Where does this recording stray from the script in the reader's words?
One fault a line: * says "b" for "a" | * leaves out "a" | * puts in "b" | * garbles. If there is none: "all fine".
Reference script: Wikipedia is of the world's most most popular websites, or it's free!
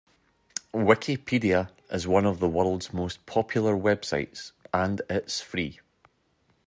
* puts in "one"
* leaves out "most"
* says "and" for "or"